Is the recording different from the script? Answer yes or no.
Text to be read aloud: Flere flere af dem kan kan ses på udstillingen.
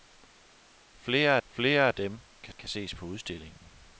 no